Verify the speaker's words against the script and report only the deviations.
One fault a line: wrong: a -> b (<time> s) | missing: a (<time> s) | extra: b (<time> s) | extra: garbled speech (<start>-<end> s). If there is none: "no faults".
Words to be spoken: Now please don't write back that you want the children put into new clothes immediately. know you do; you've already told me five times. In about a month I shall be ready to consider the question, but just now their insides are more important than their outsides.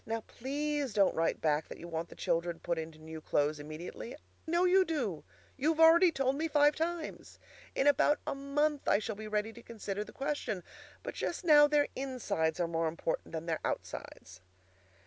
no faults